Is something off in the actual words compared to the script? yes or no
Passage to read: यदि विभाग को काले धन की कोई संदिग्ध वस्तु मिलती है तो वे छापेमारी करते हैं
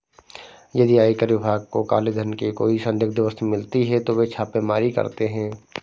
yes